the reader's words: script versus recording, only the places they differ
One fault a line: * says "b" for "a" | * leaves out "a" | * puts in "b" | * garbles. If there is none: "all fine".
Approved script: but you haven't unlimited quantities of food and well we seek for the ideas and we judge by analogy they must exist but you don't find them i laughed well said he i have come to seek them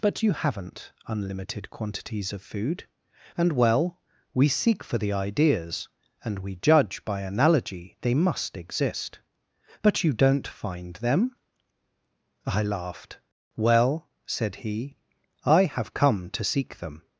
all fine